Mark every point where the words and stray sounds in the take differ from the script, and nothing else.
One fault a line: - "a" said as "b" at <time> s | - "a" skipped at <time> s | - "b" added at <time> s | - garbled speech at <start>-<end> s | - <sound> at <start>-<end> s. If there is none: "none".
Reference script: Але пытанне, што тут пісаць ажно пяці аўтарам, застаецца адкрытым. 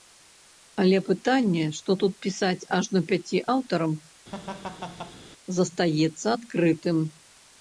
- laugh at 4.3-5.2 s